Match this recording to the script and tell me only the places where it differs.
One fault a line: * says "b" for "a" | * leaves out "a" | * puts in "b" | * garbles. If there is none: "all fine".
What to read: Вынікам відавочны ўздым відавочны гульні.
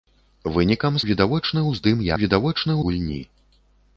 all fine